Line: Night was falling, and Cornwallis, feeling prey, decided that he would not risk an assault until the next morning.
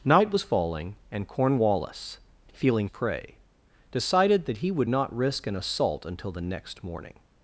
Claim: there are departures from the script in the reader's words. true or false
false